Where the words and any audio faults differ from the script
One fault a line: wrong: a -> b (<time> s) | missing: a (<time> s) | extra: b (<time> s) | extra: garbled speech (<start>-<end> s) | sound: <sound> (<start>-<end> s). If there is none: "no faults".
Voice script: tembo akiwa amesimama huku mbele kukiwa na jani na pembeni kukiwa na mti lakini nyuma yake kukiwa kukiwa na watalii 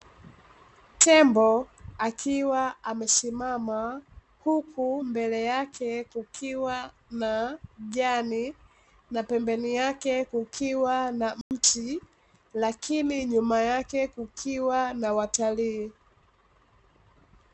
extra: yake (5.4 s)
extra: yake (9.7 s)
sound: dropout (11.4-11.5 s)
missing: kukiwa (14.9 s)